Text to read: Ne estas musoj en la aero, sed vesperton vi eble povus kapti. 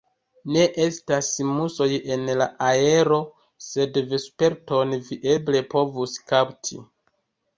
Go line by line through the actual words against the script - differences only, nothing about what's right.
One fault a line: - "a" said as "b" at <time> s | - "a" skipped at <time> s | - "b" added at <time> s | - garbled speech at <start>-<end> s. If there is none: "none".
none